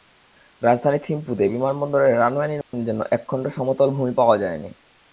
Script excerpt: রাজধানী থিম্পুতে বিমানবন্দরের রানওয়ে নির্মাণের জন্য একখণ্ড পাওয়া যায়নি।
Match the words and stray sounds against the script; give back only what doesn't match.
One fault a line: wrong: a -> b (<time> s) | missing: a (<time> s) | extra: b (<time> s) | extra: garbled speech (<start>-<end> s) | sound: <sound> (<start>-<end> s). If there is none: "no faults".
sound: dropout (2.6-2.7 s)
extra: সমতল ভূমি (3.5 s)